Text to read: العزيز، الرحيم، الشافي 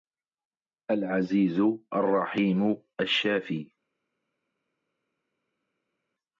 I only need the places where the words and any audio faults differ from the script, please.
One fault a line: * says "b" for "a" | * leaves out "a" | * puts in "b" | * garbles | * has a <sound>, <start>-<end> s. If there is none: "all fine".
all fine